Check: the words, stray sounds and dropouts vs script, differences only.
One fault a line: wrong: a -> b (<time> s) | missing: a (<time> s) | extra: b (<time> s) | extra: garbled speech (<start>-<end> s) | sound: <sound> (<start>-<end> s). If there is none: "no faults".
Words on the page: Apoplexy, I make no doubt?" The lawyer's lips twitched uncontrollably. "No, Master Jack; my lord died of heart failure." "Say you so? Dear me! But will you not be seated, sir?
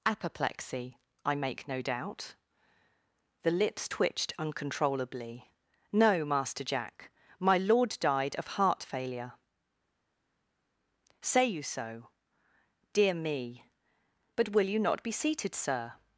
missing: lawyer's (3.5 s)